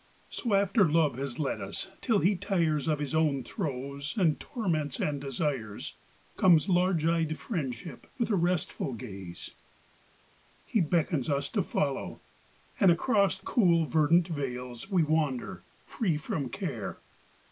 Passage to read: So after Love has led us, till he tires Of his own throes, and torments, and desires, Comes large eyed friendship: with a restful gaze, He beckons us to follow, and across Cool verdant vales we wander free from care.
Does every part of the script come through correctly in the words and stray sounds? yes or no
yes